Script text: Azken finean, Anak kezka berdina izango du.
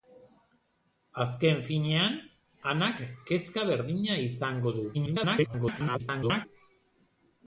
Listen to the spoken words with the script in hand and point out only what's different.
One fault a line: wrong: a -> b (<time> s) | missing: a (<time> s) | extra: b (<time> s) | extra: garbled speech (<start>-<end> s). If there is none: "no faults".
extra: garbled speech (4.9-6.5 s)